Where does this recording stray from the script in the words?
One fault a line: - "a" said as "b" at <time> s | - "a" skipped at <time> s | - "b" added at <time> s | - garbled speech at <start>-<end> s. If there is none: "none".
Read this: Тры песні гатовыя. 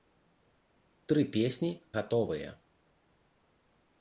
none